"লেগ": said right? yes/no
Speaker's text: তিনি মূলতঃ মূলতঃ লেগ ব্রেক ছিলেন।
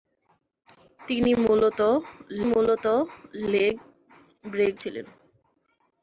yes